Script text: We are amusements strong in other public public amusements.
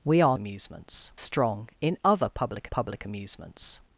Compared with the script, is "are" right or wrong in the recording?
right